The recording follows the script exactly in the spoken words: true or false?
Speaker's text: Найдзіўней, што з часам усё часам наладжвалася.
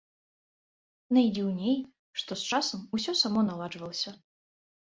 false